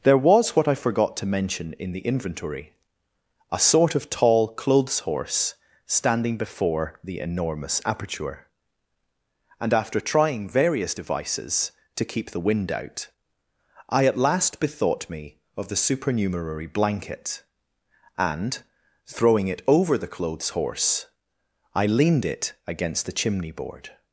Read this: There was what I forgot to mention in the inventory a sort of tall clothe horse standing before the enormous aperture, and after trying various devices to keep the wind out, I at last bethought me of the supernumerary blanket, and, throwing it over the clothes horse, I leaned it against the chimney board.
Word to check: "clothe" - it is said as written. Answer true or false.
false